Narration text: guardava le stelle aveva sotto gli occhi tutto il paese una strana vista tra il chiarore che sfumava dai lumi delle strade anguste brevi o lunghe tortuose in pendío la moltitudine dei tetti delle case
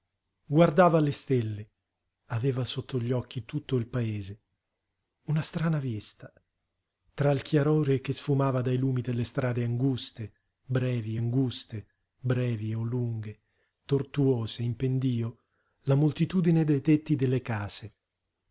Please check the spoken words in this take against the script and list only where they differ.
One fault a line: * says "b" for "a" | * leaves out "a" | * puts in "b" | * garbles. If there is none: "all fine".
* puts in "anguste brevi"